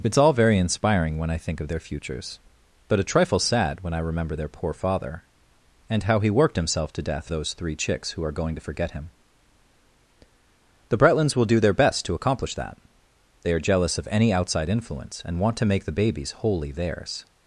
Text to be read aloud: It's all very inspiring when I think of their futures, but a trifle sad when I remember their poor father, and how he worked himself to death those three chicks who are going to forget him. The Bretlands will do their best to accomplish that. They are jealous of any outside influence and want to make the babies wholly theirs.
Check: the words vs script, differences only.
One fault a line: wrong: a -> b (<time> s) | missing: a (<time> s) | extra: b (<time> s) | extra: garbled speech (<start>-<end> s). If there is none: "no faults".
no faults